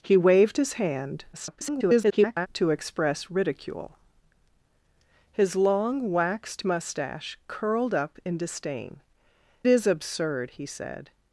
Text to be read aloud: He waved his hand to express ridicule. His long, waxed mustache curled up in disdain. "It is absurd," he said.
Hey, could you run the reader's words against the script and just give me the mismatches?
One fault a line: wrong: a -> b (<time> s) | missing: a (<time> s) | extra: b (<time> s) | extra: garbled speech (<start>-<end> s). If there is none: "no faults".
extra: garbled speech (1.3-2.5 s)
missing: It (9.0 s)